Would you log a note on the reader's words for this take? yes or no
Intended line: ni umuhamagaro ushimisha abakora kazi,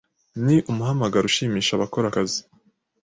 no